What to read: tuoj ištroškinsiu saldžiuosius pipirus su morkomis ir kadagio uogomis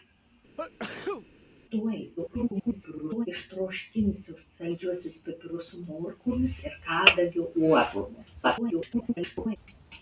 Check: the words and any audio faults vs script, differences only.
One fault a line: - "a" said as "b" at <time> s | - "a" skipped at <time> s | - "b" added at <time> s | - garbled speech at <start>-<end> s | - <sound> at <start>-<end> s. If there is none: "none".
- sneeze at 0.6-1.3 s
- garbled speech at 2.2-3.3 s
- garbled speech at 8.4-9.6 s